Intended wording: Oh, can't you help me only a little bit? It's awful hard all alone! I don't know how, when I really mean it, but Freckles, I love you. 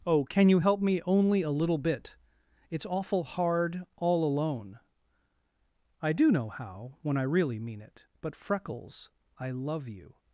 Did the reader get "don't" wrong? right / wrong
wrong